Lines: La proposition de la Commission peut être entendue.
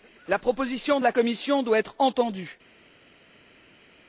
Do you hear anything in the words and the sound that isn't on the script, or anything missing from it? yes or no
yes